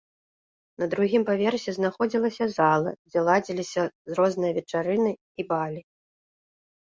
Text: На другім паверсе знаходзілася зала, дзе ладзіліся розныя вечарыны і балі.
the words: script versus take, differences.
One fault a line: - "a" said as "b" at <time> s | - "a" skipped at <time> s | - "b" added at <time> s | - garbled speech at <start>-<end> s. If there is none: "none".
none